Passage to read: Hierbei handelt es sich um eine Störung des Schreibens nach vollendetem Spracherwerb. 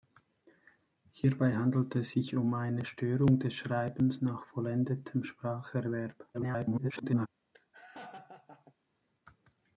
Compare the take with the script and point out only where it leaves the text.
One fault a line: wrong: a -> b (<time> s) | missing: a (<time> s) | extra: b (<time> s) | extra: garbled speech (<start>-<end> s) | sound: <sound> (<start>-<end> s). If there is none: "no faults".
extra: garbled speech (6.3-7.3 s)
sound: laugh (7.5-8.7 s)